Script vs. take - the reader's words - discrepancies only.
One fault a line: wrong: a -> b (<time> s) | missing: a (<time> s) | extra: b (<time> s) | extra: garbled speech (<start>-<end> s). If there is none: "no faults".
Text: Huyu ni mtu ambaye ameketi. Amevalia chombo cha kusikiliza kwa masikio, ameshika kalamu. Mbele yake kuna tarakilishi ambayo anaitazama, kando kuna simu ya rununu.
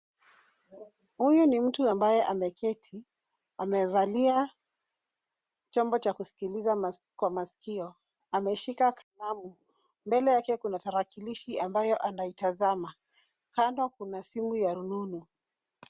no faults